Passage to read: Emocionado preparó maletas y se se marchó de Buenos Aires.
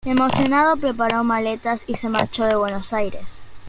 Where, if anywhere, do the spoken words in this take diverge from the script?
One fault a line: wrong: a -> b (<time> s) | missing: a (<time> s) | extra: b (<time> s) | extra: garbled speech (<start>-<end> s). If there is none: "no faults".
missing: se (2.1 s)